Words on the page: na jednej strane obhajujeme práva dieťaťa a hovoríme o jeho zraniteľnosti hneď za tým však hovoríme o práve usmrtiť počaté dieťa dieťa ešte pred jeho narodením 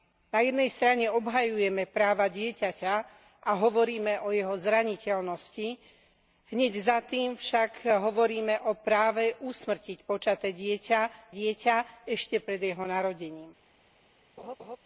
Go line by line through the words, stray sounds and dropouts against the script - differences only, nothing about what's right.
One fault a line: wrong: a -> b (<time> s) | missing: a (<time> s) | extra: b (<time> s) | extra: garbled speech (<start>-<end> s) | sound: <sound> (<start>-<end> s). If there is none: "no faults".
sound: laugh (14.4-14.8 s)